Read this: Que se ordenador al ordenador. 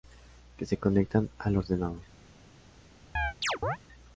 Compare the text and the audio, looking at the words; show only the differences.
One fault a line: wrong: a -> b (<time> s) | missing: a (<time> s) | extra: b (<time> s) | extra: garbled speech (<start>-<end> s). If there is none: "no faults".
wrong: ordenador -> conectan (0.8 s)